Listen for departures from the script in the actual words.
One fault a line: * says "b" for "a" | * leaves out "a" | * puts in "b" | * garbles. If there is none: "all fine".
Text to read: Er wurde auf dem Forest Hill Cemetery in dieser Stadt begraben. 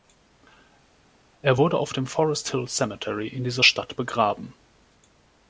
all fine